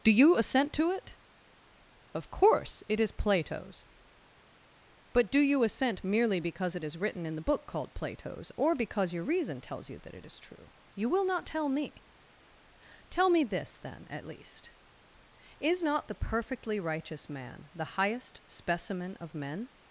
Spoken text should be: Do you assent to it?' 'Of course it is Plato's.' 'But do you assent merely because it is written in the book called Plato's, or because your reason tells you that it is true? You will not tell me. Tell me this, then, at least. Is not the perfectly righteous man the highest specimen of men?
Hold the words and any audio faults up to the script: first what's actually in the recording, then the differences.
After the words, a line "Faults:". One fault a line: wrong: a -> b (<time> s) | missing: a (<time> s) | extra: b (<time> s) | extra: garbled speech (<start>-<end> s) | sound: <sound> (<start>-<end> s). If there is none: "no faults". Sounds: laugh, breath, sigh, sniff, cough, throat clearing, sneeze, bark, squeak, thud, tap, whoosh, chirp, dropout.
Do you assent to it?' 'Of course it is Plato's.' 'But do you assent merely because it is written in the book called Plato's, or because your reason tells you that it is true? You will not tell me. Tell me this, then, at least. Is not the perfectly righteous man the highest specimen of men?
Faults:
no faults